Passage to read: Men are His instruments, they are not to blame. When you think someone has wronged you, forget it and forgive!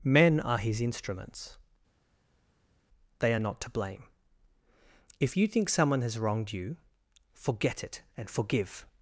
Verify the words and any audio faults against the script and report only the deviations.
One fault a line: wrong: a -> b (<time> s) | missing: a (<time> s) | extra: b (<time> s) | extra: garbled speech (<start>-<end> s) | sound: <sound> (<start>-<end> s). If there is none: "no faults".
wrong: When -> If (5.2 s)